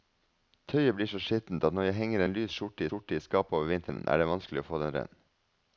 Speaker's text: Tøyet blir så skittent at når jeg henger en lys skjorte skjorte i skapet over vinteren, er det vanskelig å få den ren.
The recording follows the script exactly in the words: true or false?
true